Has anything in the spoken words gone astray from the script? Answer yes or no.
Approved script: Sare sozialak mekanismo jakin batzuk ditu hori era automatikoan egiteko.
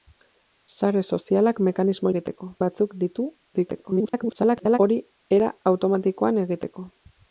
yes